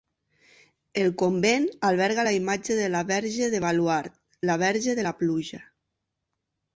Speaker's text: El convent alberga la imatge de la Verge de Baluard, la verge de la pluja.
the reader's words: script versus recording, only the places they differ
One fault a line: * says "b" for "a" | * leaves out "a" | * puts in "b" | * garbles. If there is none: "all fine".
all fine